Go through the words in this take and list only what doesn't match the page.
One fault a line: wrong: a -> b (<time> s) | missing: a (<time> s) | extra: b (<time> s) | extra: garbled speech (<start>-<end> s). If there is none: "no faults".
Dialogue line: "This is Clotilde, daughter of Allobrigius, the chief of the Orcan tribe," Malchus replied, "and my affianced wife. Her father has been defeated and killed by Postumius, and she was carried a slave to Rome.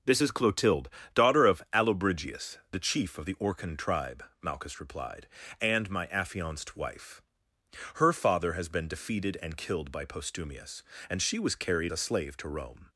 no faults